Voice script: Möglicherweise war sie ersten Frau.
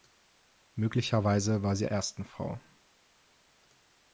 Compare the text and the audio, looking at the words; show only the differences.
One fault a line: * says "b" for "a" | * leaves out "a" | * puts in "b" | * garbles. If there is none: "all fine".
all fine